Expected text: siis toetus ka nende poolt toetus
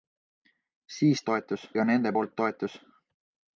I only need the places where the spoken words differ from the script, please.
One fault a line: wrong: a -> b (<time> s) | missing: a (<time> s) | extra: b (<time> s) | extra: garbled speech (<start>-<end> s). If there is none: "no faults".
no faults